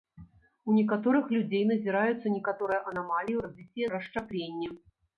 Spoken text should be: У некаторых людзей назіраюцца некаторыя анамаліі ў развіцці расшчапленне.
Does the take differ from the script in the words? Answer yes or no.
no